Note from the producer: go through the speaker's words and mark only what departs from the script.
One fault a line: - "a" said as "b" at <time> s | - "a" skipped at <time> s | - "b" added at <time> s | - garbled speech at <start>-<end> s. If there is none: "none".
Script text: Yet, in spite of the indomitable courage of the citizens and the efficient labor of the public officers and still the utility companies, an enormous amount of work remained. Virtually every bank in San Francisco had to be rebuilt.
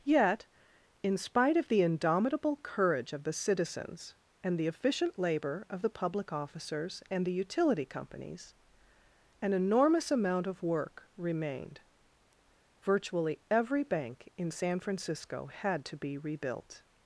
- "still" skipped at 7.2 s